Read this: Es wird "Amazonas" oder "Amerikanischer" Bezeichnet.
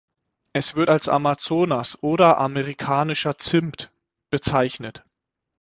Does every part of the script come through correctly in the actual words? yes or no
no